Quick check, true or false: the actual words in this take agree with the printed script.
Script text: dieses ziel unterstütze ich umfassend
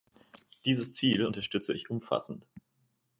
true